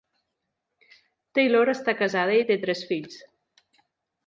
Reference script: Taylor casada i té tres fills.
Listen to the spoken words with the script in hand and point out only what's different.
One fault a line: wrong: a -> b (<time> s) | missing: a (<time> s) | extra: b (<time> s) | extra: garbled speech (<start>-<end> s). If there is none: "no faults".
extra: està (1.8 s)